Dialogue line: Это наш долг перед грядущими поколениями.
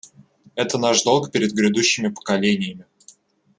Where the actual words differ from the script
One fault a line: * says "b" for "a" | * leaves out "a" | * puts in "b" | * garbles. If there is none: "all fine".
all fine